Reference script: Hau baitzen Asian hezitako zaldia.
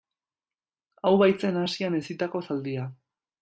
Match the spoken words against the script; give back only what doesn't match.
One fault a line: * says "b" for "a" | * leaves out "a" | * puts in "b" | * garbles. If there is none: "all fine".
all fine